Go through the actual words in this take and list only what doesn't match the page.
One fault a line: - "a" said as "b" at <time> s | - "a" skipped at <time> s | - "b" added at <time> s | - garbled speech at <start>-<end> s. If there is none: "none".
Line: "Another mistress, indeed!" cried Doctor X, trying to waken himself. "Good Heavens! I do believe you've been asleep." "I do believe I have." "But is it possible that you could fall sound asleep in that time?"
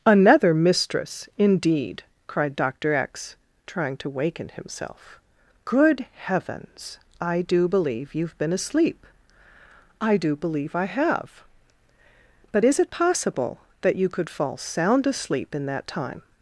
none